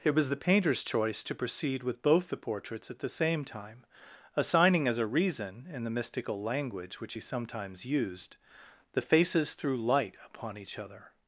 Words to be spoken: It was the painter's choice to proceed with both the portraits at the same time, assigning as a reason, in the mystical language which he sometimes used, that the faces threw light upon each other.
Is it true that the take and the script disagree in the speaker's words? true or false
true